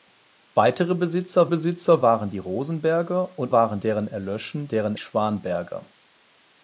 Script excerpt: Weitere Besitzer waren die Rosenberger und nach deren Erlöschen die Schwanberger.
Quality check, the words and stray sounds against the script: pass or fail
fail